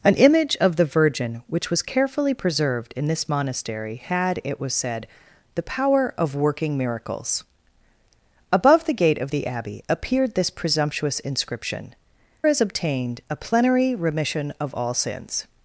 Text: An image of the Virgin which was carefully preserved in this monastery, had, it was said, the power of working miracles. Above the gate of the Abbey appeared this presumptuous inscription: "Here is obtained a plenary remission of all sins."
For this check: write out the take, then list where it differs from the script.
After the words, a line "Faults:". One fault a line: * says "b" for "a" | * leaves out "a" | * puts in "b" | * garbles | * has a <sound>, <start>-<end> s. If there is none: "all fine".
An image of the Virgin which was carefully preserved in this monastery, had, it was said, the power of working miracles. Above the gate of the Abbey appeared this presumptuous inscription: "Is obtained a plenary remission of all sins."
Faults:
* leaves out "Here"